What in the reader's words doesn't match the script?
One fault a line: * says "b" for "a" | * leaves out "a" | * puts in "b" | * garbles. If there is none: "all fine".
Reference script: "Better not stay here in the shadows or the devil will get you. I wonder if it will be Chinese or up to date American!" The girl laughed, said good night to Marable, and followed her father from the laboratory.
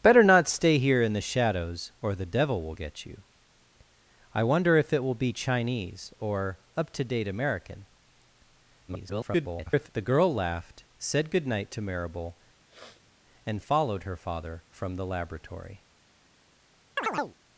* garbles